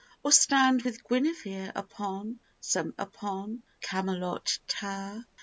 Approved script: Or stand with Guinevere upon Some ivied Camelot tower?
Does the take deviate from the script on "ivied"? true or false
true